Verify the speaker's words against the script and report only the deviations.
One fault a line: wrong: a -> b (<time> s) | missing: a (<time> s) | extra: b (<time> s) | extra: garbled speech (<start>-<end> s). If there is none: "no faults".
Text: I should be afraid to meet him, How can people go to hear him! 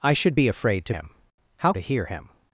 missing: meet (0.9 s)
missing: can people go (1.7 s)